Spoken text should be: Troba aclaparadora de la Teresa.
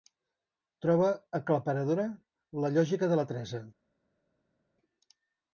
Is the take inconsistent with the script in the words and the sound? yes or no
yes